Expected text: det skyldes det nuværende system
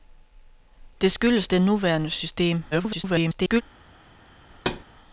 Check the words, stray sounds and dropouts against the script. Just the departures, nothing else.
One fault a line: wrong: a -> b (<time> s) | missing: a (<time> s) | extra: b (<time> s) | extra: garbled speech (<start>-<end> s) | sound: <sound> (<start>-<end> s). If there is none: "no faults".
extra: garbled speech (2.7-3.6 s)
sound: thud (4.5-4.8 s)